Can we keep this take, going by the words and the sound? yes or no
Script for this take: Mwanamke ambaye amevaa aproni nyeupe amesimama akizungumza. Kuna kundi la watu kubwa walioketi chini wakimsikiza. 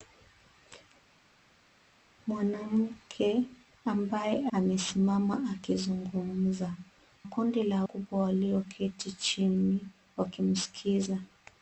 no